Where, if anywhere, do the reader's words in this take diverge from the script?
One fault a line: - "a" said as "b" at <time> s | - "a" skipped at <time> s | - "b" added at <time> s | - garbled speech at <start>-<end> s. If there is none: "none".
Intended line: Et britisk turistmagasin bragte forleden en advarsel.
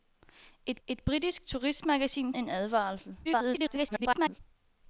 - "et" added at 0.9 s
- "bragte forleden" skipped at 2.3 s
- garbled speech at 3.2-4.4 s